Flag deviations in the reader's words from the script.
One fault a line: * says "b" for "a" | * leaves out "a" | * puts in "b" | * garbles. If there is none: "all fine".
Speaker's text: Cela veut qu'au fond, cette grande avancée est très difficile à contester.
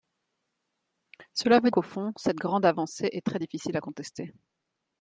all fine